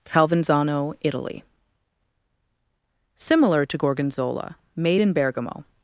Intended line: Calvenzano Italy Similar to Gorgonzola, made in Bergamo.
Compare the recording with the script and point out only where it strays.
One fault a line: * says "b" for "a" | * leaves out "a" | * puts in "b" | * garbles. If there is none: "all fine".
all fine